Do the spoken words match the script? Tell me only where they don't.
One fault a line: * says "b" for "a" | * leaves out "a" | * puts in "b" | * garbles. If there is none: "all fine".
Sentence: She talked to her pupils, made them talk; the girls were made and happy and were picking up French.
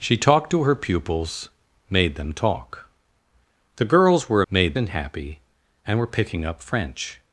all fine